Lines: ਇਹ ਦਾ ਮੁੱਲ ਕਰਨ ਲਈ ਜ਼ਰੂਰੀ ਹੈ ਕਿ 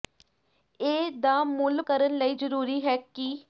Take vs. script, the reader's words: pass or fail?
pass